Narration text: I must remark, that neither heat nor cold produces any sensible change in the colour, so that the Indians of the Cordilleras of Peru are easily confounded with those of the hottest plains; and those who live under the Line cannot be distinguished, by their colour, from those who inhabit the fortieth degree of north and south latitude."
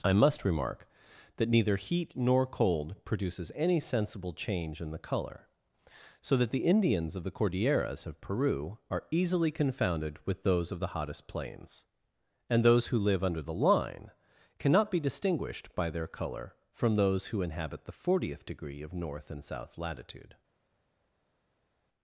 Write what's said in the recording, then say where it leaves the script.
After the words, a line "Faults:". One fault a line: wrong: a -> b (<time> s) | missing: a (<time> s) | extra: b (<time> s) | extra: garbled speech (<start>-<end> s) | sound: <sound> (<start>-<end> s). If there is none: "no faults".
I must remark, that neither heat nor cold produces any sensible change in the colour, so that the Indians of the Cordilleras of Peru are easily confounded with those of the hottest plains; and those who live under the Line cannot be distinguished, by their colour, from those who inhabit the fortieth degree of north and south latitude."
Faults:
no faults